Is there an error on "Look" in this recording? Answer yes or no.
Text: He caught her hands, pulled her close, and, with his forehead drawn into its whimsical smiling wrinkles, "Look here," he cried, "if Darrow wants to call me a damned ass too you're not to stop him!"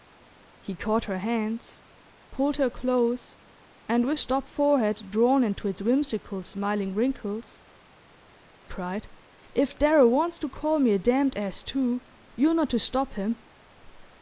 yes